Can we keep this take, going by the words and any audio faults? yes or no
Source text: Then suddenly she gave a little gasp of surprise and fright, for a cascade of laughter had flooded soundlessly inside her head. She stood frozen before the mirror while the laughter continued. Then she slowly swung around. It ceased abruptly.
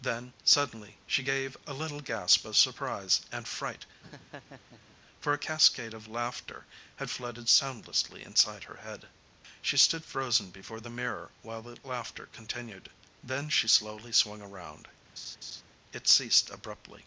no